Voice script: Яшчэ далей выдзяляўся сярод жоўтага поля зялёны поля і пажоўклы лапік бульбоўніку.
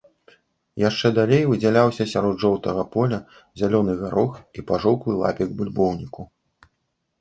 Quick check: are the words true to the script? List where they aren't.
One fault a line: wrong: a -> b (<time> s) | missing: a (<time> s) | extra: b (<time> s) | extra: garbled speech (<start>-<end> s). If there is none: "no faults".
wrong: поля -> гарох (4.1 s)